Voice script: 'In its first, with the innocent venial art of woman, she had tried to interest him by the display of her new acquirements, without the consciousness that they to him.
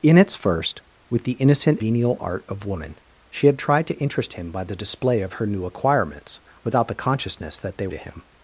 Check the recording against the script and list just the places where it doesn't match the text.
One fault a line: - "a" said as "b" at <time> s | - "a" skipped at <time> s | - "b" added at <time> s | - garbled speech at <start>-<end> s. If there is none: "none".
none